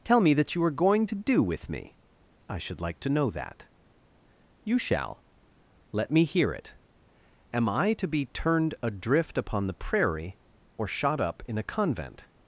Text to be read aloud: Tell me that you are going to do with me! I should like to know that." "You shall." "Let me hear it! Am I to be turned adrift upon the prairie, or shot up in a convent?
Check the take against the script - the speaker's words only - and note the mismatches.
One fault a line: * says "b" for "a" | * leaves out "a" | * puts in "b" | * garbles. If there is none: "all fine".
all fine